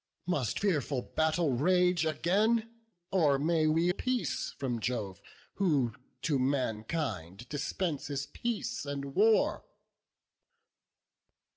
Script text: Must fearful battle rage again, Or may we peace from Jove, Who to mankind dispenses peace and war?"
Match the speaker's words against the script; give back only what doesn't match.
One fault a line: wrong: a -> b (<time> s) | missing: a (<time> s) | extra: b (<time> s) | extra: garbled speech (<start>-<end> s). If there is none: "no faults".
no faults